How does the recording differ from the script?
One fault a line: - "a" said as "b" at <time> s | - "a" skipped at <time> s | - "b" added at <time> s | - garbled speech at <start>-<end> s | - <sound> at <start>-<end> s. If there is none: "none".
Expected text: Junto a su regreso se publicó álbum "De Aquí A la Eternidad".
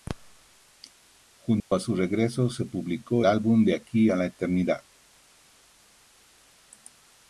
- dropout at 1.6-1.7 s